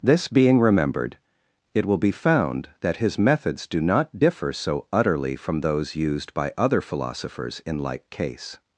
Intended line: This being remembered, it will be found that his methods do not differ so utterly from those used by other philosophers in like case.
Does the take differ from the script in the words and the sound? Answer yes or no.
no